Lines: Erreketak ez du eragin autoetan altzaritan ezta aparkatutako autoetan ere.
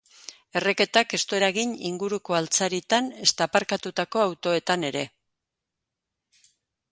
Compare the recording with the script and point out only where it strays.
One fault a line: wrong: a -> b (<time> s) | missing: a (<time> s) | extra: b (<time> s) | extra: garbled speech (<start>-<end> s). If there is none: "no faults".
wrong: autoetan -> inguruko (1.9 s)